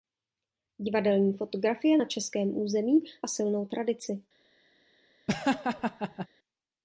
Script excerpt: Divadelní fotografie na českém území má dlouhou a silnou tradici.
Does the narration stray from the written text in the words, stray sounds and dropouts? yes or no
yes